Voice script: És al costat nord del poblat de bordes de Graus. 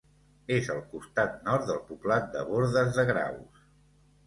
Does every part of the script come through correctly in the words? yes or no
yes